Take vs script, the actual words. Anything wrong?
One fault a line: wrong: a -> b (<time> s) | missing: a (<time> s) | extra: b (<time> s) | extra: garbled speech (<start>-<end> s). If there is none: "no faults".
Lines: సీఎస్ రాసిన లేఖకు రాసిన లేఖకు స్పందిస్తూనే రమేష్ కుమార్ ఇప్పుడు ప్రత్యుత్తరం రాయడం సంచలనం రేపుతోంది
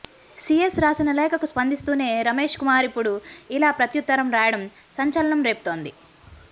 missing: రాసిన లేఖకు (1.5 s)
extra: ఇలా (3.5 s)